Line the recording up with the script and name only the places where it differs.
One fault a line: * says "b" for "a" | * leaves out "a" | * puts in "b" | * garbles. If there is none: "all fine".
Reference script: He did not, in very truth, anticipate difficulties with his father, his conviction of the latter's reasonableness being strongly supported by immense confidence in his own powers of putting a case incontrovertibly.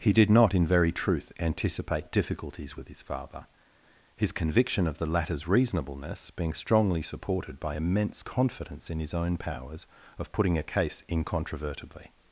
all fine